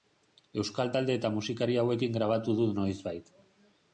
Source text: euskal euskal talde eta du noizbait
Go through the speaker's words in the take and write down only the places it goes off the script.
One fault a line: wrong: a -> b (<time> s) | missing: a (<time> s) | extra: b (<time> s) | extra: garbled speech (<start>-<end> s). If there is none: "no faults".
missing: euskal (0.9 s)
extra: musikari hauekin grabatu (1.4 s)